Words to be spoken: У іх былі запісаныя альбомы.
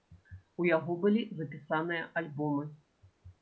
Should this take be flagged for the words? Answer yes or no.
yes